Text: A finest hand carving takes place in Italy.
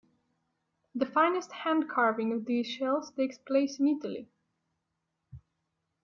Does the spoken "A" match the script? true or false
false